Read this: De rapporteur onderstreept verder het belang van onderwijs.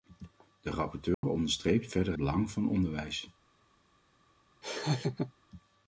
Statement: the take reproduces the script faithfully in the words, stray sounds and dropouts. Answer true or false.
false